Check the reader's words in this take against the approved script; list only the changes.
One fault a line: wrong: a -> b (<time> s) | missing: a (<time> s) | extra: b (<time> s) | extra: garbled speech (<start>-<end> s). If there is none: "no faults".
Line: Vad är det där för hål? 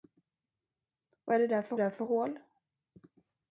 extra: där för (1.7 s)